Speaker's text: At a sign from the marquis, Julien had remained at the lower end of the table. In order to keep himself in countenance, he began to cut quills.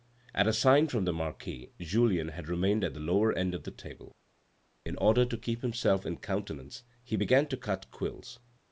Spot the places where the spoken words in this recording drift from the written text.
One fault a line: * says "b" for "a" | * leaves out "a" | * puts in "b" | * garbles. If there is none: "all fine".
all fine